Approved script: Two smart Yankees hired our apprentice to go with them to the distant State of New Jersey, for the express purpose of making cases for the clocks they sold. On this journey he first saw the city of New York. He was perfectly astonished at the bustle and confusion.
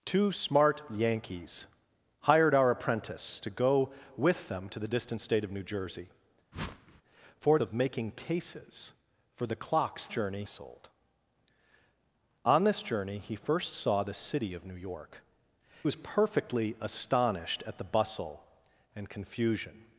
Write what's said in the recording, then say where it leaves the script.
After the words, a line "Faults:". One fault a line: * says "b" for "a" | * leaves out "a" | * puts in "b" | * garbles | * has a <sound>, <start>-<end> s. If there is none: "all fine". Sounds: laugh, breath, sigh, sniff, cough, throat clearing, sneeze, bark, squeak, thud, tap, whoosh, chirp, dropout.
Two smart Yankees hired our apprentice to go with them to the distant State of New Jersey, for of making cases for the clocks journey sold. On this journey he first saw the city of New York. Was perfectly astonished at the bustle and confusion.
Faults:
* has a whoosh, 6.5-7.0 s
* leaves out "the express purpose"
* says "journey" for "they"
* leaves out "He"